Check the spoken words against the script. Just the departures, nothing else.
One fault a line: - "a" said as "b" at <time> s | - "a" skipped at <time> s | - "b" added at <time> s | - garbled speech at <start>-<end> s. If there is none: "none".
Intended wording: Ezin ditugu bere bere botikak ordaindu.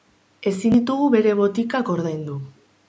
- "bere" skipped at 1.4 s